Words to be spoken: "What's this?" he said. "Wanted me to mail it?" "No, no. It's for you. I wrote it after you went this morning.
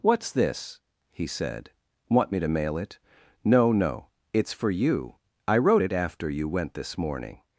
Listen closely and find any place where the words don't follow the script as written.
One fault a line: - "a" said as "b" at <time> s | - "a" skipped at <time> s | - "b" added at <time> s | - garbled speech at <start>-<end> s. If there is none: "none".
- "Wanted" said as "Want" at 2.1 s